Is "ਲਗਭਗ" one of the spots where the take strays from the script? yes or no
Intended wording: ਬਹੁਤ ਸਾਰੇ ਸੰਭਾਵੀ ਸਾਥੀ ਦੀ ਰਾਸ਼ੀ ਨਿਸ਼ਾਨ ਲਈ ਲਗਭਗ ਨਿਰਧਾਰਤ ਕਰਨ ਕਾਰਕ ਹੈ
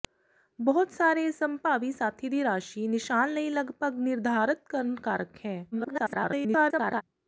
no